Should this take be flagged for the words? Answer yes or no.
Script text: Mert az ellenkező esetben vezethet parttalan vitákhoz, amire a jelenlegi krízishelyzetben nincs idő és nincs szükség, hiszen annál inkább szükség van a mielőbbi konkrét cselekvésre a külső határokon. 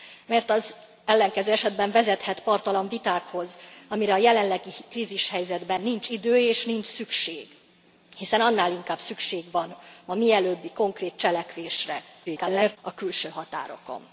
yes